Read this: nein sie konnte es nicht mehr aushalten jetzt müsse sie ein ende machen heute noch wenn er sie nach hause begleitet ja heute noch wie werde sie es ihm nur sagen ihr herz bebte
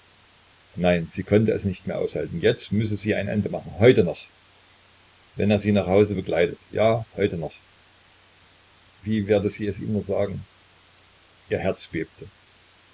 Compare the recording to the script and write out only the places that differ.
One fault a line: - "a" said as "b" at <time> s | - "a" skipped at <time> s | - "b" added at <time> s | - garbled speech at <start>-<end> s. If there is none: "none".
none